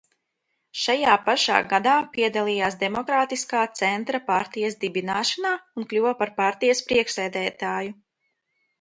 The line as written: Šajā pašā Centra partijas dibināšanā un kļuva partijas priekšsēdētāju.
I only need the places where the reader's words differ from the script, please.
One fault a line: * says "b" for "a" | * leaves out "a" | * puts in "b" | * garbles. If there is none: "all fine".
* puts in "gadā piedalījās Demokrātiskā"
* puts in "par"